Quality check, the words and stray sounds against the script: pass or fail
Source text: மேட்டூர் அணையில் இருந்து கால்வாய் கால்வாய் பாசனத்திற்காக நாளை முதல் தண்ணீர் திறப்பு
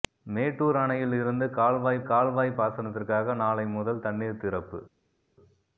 pass